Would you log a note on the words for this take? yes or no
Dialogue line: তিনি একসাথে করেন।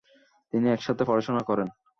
yes